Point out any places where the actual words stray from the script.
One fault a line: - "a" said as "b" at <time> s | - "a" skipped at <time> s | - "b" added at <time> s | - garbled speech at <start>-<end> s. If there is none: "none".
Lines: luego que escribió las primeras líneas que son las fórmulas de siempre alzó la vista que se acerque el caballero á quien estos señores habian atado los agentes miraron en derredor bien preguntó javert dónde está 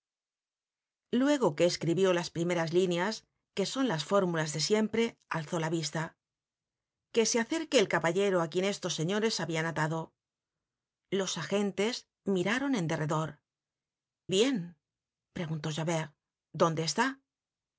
none